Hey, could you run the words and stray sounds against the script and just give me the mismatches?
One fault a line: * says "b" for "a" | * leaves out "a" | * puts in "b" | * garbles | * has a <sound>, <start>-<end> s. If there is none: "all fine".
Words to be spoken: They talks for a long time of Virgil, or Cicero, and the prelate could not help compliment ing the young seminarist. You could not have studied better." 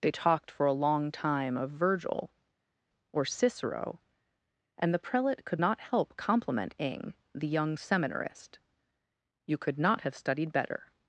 * says "talked" for "talks"